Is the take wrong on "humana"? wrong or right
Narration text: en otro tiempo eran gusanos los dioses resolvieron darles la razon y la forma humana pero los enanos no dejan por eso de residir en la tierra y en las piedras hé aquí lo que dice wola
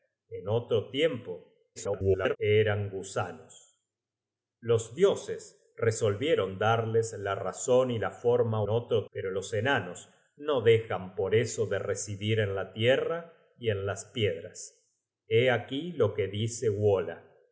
wrong